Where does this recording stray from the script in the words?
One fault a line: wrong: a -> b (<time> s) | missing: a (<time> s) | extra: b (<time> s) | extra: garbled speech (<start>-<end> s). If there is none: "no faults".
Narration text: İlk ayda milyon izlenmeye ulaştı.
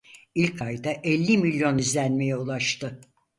extra: elli (0.9 s)